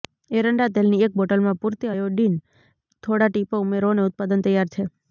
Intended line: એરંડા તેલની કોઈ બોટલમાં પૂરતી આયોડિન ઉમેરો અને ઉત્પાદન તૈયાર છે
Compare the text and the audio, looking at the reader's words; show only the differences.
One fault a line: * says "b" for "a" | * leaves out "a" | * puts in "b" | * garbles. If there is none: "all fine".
* says "એક" for "કોઈ"
* puts in "થોડા ટીપાં"